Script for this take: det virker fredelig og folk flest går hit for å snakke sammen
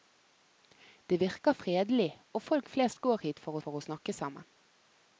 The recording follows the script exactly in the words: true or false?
false